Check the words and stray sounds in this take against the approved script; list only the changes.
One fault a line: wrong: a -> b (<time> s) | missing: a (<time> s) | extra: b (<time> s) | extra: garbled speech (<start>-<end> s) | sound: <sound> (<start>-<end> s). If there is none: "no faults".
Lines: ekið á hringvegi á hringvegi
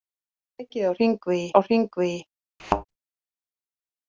sound: thud (2.6-2.8 s)